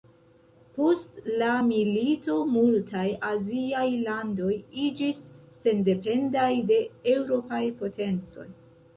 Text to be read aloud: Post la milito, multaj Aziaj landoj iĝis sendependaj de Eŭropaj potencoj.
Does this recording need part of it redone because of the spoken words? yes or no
no